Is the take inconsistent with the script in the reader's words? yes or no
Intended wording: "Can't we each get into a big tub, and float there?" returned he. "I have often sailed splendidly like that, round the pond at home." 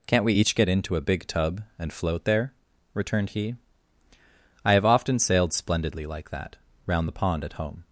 no